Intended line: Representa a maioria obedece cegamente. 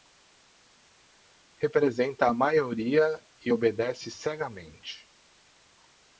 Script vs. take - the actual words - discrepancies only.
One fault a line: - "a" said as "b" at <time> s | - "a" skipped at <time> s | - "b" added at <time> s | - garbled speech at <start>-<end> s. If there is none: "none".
- "e" added at 3.4 s